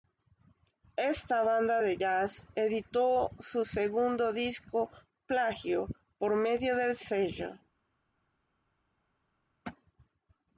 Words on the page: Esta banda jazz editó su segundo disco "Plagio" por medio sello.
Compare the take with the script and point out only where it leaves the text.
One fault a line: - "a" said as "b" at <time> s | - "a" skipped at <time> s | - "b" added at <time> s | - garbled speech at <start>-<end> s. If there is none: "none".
- "de" added at 1.8 s
- "del" added at 6.7 s